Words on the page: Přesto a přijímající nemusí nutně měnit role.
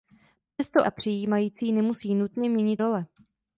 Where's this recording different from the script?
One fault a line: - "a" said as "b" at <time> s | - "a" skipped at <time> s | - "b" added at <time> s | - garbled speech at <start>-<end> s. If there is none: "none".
none